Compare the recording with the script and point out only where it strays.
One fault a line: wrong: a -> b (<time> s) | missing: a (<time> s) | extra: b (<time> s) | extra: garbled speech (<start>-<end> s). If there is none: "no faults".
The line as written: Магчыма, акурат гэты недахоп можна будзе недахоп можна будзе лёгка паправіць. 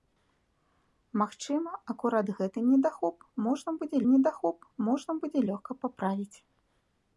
no faults